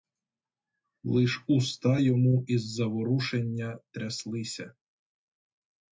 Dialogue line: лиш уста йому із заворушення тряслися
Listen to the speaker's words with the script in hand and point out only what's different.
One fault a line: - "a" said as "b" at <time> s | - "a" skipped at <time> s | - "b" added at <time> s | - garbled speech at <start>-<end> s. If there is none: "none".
none